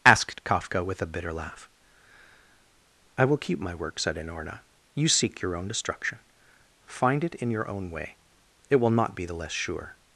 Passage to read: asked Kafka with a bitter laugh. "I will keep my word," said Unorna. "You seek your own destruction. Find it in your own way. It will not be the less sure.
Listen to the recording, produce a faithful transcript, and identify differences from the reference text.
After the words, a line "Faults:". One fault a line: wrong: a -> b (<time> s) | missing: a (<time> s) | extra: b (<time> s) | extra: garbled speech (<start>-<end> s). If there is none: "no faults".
asked Kafka with a bitter laugh. "I will keep my work," said Unorna. "You seek your own destruction. Find it in your own way. It will not be the less sure.
Faults:
wrong: word -> work (3.8 s)